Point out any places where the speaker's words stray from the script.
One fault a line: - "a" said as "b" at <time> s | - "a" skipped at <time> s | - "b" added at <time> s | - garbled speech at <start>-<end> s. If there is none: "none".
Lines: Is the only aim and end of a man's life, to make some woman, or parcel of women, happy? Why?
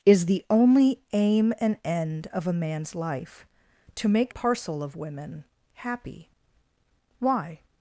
- "some woman or" skipped at 4.3 s